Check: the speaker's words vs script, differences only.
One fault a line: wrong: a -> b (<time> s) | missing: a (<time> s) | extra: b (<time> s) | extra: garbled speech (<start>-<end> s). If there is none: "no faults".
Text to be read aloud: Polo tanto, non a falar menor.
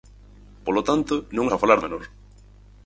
no faults